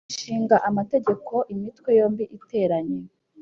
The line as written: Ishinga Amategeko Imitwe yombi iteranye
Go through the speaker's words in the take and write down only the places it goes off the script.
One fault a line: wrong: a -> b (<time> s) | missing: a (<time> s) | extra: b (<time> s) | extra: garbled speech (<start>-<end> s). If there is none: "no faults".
no faults